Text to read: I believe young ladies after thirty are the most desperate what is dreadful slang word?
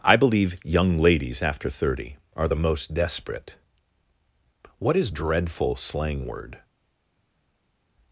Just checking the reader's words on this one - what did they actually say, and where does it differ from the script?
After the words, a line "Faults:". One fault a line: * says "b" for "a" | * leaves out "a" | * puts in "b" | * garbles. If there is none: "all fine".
I believe young ladies after thirty are the most desperate what is dreadful slang word?
Faults:
all fine